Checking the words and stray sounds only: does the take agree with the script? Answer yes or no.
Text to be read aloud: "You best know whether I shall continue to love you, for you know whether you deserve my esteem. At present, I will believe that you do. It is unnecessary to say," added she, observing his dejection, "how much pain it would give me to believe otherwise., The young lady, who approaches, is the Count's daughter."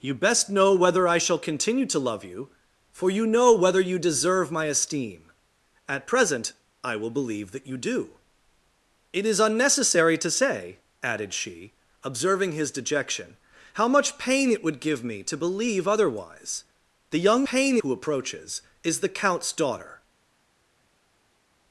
no